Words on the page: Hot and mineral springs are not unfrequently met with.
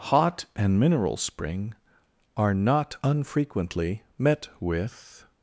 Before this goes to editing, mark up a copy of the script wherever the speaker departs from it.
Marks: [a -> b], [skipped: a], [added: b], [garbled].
Hot and mineral [springs -> spring] are not unfrequently met with.